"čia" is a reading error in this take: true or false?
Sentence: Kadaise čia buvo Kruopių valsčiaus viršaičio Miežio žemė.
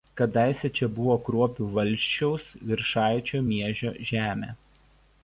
false